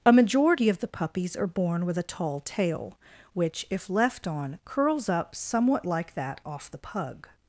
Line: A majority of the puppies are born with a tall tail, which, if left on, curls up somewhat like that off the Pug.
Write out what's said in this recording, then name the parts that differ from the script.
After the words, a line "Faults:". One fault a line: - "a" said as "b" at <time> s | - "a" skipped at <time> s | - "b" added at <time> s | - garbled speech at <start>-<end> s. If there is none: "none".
A majority of the puppies are born with a tall tail, which, if left on, curls up somewhat like that off the Pug.
Faults:
none